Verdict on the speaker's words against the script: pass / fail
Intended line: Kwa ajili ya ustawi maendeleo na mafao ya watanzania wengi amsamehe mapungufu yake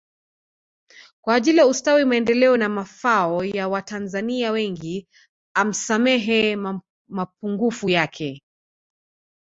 pass